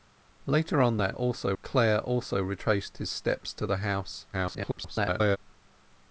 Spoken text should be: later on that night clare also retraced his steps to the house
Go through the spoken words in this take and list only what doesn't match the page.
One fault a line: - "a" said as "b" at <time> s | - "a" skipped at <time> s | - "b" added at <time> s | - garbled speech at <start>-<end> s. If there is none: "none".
- "night" said as "also" at 1.1 s
- garbled speech at 4.3-5.4 s